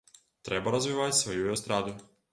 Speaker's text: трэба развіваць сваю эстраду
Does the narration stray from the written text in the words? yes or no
no